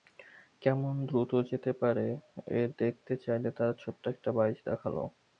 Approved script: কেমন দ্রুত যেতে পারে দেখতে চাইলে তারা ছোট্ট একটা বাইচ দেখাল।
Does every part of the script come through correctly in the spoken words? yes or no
yes